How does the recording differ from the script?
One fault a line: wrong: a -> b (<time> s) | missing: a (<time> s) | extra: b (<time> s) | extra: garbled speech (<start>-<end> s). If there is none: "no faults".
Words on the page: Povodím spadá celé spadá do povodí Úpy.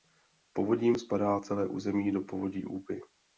wrong: spadá -> území (1.7 s)